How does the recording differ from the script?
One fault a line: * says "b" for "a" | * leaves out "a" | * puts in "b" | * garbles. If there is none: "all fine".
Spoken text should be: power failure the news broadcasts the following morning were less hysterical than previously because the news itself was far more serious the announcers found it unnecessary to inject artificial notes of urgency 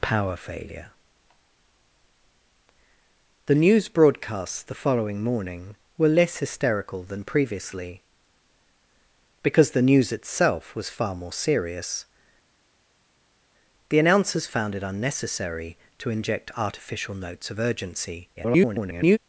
* garbles